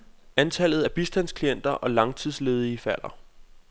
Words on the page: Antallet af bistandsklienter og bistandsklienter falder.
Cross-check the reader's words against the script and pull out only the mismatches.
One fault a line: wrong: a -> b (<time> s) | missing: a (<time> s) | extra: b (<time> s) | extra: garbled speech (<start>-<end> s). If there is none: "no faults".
wrong: bistandsklienter -> langtidsledige (1.9 s)